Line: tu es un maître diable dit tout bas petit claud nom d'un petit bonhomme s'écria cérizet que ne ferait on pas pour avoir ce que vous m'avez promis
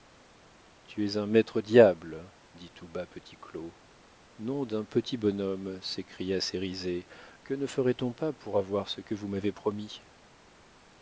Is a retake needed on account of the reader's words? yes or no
no